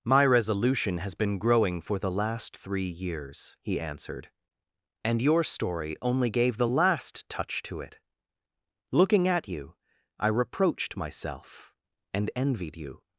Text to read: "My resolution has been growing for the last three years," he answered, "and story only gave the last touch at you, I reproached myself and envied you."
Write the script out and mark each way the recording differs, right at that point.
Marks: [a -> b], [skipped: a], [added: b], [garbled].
"My resolution has been growing for the last three years," he answered, "and [added: your] story only gave the last touch [added: to it Looking] at you, I reproached myself and envied you."